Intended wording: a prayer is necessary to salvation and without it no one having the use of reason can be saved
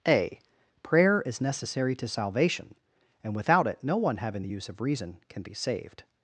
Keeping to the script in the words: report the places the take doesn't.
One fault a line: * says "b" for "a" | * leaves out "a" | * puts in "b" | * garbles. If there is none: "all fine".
all fine